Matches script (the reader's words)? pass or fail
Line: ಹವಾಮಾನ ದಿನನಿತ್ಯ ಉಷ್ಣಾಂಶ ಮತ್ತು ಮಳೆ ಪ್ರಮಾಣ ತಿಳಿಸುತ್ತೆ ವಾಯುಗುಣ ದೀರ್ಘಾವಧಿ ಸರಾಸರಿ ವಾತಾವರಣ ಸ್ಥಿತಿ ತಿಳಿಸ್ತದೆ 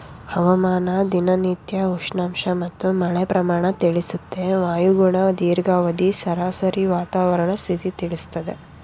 pass